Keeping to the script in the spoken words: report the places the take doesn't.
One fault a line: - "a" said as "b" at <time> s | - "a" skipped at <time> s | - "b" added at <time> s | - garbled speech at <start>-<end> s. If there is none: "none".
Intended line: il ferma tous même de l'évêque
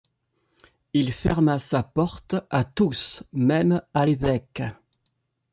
- "sa porte à" added at 1.6 s
- "de" said as "à" at 3.9 s